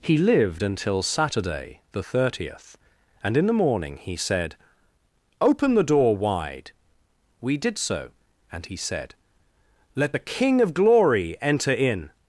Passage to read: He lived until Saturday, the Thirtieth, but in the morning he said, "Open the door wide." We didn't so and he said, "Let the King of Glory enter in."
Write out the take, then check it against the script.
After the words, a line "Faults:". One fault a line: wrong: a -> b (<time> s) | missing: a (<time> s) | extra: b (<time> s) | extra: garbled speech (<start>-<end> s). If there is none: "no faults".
He lived until Saturday, the Thirtieth, and in the morning he said, "Open the door wide." We did so and he said, "Let the King of Glory enter in."
Faults:
wrong: but -> and (3.2 s)
wrong: didn't -> did (7.6 s)